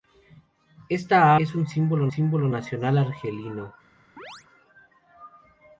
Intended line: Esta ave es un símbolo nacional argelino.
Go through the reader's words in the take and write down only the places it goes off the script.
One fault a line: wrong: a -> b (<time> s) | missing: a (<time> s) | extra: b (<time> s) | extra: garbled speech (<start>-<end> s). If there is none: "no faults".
missing: ave (1.4 s)
extra: símbolo (2.1 s)